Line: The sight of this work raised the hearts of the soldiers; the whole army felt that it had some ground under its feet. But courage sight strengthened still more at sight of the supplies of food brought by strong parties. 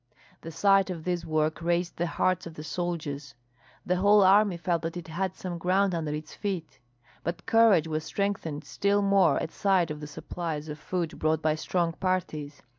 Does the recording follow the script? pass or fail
fail